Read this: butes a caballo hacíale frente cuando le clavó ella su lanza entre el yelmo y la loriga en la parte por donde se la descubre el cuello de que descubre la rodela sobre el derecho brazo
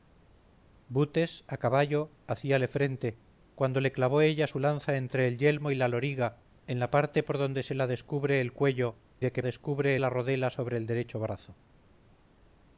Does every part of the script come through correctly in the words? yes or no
yes